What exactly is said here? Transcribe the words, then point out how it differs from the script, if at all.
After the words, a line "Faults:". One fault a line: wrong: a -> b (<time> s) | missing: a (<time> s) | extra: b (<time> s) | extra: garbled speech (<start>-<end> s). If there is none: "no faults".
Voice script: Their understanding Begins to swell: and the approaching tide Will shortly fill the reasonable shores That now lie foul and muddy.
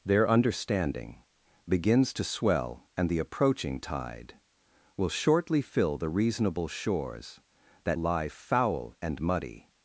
Their understanding Begins to swell: and the approaching tide Will shortly fill the reasonable shores That lie foul and muddy.
Faults:
missing: now (8.0 s)